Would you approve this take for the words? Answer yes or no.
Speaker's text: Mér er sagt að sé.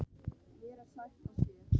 yes